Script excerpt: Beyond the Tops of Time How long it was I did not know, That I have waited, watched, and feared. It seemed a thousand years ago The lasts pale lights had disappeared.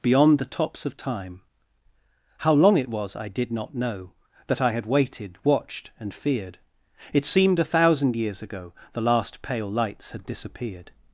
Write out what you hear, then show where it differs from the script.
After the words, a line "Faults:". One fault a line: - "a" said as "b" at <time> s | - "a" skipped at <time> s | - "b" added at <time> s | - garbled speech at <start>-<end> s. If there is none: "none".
Beyond the Tops of Time How long it was I did not know, That I had waited, watched, and feared. It seemed a thousand years ago The last pale lights had disappeared.
Faults:
- "have" said as "had" at 4.7 s
- "lasts" said as "last" at 9.0 s